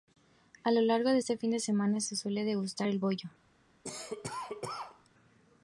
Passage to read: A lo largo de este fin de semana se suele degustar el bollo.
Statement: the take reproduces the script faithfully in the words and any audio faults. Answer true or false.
false